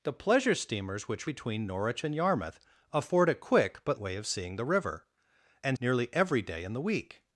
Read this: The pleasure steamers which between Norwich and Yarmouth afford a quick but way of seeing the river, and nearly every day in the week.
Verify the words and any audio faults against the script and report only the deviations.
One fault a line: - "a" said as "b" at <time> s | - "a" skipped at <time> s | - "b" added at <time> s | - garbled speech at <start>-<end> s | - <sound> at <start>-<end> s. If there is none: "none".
none